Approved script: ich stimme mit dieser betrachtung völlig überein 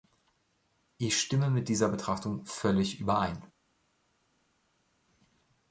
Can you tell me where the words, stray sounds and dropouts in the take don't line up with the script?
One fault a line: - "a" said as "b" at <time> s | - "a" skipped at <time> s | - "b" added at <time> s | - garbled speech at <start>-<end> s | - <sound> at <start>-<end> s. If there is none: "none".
none